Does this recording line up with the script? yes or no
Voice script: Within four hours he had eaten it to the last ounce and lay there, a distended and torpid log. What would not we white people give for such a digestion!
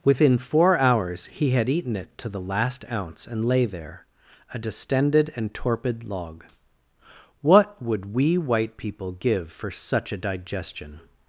no